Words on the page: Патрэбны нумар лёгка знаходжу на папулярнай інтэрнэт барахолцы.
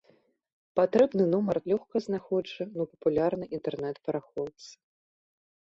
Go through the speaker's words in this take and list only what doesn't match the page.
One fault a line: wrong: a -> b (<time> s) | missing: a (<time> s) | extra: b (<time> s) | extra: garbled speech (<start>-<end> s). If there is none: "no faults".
no faults